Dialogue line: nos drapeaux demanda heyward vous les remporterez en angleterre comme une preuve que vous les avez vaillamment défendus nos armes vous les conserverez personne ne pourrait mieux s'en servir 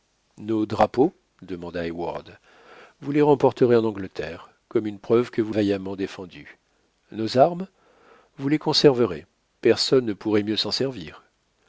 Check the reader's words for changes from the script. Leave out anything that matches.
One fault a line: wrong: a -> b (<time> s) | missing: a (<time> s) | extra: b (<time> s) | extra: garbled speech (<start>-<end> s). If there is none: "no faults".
missing: les avez (5.5 s)